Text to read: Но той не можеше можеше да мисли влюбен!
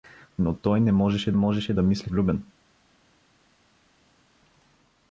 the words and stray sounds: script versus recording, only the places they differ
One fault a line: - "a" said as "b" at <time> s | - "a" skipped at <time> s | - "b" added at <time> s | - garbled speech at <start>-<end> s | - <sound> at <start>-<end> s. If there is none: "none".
none